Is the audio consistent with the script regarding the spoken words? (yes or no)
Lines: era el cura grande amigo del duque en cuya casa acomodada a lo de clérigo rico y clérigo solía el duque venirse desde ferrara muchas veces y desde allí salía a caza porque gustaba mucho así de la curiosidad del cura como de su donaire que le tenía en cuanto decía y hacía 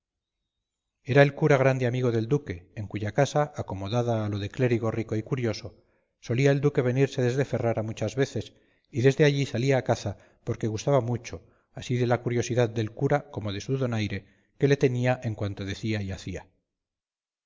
no